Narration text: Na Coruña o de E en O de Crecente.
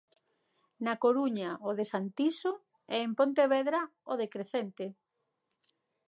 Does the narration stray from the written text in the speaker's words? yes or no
yes